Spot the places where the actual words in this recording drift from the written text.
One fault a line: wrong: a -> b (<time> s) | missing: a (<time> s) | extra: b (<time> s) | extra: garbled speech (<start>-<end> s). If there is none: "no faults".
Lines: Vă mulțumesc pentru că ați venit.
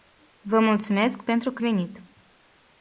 missing: ați (1.6 s)